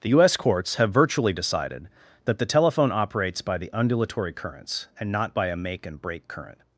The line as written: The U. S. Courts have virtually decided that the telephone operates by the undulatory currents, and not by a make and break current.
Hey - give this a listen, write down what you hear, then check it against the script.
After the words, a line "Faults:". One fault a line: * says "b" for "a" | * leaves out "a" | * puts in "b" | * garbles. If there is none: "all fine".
The U. S. Courts have virtually decided that the telephone operates by the undulatory currents, and not by a make and break current.
Faults:
all fine